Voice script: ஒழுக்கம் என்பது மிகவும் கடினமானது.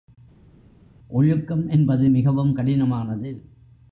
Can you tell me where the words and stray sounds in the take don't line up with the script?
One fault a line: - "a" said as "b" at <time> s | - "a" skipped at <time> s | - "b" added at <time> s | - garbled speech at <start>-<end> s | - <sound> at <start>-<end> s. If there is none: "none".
none